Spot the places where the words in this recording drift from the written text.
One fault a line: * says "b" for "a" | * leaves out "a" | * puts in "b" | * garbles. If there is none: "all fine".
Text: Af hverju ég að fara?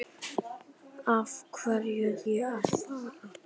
all fine